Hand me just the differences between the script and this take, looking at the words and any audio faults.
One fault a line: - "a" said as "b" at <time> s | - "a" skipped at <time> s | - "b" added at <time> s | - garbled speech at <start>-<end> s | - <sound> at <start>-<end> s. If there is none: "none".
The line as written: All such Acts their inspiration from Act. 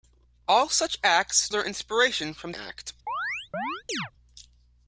- chirp at 3.1-4.1 s